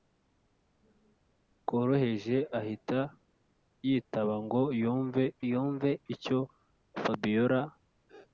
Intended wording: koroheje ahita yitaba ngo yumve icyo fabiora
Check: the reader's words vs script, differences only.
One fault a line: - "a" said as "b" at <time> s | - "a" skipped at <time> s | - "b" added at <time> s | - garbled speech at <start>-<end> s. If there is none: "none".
- "yumve" added at 5.5 s